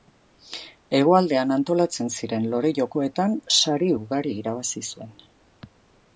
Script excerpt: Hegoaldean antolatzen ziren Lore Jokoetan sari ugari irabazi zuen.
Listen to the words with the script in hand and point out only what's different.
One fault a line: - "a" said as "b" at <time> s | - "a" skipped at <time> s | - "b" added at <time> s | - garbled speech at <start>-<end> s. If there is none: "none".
none